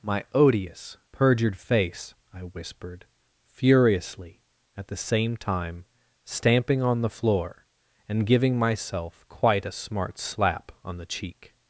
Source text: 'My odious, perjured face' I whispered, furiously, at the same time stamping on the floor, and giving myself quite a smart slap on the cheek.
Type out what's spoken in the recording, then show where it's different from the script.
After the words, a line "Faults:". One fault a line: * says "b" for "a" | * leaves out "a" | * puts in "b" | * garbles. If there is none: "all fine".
'My odious, perjured face' I whispered, furiously, at the same time stamping on the floor, and giving myself quite a smart slap on the cheek.
Faults:
all fine